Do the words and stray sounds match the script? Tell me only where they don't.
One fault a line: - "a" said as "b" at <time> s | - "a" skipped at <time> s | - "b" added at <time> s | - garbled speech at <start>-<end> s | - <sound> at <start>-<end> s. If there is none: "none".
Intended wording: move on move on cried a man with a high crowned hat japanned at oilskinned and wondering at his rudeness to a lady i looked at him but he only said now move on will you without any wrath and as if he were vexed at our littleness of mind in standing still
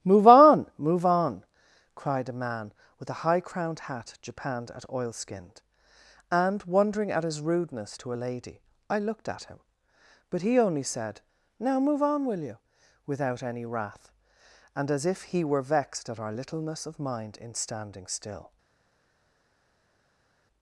none